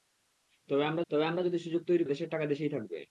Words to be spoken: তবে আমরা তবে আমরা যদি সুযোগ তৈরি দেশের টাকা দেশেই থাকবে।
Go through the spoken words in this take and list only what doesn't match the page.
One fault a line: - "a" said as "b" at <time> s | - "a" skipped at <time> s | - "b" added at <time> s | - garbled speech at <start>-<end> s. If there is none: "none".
none